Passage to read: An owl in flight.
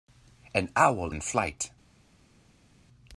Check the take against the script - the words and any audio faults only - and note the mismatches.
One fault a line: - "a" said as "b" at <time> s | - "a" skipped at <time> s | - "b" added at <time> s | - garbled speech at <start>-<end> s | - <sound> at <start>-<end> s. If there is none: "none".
none